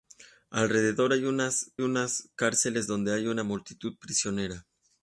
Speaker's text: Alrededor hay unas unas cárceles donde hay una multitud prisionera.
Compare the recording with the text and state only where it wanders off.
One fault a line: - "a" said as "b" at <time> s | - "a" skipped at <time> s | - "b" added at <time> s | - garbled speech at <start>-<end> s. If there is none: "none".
none